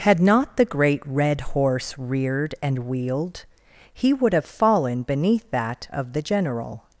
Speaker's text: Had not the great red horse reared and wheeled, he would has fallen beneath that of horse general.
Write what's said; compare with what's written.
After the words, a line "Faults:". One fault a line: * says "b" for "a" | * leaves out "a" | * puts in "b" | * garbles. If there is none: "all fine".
Had not the great red horse reared and wheeled, he would have fallen beneath that of the general.
Faults:
* says "have" for "has"
* says "the" for "horse"